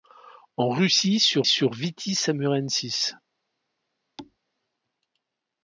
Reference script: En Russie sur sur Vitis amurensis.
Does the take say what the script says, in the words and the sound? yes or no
no